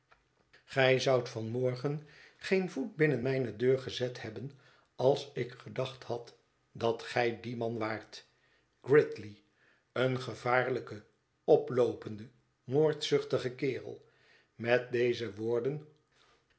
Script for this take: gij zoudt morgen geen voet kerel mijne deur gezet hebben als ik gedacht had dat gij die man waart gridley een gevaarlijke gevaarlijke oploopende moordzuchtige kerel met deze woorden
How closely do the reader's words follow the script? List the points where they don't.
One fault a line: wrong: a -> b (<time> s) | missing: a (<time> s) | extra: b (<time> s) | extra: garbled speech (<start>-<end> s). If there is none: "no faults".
extra: van (1.3 s)
wrong: kerel -> binnen (3.0 s)
missing: gevaarlijke (11.0 s)